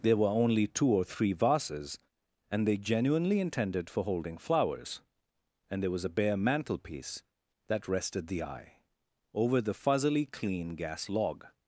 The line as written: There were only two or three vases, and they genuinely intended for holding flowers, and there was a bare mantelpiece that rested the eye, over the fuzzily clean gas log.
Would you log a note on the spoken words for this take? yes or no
no